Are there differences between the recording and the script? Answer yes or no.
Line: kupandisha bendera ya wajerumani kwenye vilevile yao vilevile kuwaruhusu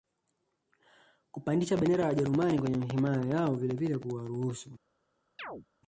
yes